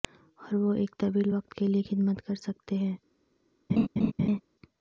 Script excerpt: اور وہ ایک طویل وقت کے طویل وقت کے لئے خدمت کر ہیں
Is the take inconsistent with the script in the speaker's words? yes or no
yes